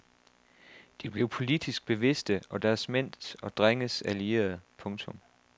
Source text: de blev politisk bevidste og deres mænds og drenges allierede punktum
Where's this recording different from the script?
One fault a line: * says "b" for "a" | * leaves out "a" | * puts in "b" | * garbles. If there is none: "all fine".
all fine